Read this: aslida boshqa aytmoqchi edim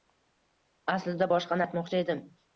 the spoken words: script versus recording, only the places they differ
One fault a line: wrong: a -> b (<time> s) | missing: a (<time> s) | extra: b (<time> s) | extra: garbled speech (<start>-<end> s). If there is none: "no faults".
no faults